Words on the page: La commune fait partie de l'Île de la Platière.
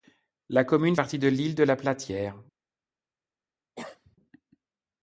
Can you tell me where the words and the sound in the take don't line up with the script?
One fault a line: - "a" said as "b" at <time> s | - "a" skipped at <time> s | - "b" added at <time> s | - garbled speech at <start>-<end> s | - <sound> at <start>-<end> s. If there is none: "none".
- "fait" skipped at 0.9 s
- cough at 3.8-4.2 s